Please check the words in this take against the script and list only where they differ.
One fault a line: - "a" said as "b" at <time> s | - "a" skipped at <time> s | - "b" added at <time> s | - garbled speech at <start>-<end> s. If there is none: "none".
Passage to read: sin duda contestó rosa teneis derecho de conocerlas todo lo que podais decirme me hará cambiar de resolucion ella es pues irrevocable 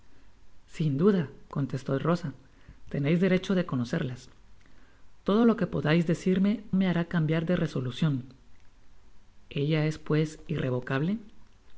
none